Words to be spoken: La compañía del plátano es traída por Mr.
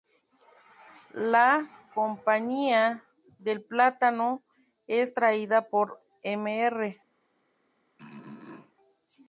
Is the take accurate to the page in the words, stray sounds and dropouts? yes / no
no